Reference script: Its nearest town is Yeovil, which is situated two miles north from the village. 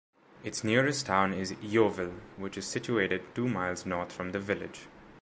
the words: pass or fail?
pass